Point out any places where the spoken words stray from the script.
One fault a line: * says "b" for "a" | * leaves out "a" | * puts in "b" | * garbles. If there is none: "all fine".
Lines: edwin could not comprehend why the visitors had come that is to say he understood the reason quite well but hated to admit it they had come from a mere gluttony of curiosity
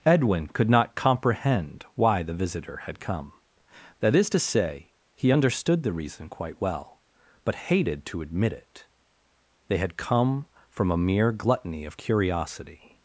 * says "visitor" for "visitors"